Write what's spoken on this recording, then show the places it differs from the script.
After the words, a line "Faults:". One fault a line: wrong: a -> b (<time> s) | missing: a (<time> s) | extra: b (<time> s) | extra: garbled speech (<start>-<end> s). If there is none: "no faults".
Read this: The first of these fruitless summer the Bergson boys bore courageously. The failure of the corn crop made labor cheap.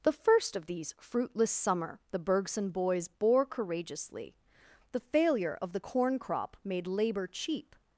The first of these fruitless summer the Bergson boys bore courageously. The failure of the corn crop made labor cheap.
Faults:
no faults